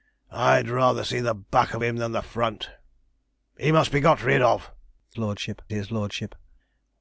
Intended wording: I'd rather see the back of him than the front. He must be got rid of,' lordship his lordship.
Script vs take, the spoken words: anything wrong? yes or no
no